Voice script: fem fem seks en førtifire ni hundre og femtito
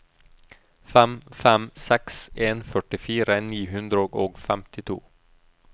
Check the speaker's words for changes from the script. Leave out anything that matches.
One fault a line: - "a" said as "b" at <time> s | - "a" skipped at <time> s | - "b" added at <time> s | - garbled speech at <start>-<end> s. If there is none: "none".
none